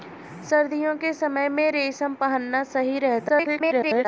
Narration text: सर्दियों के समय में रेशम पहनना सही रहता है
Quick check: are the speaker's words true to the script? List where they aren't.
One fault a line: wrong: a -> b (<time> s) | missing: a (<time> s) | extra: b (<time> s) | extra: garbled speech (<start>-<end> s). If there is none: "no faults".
extra: garbled speech (3.3-4.1 s)